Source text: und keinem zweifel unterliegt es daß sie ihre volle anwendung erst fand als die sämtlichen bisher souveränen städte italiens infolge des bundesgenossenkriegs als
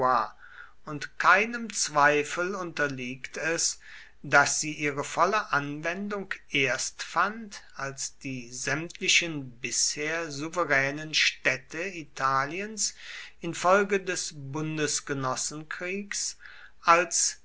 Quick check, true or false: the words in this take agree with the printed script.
true